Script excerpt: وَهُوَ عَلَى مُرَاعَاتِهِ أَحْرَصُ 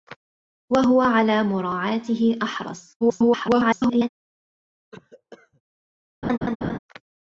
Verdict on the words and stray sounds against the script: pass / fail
fail